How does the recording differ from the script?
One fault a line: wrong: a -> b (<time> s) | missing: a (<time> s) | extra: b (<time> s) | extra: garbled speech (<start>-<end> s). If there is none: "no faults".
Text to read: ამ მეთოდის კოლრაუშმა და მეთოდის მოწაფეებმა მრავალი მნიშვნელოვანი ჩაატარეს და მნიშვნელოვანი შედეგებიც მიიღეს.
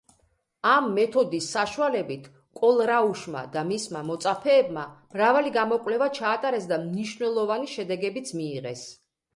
extra: საშუალებით (1.6 s)
wrong: მეთოდის -> მისმა (3.7 s)
wrong: მნიშვნელოვანი -> გამოკვლევა (5.6 s)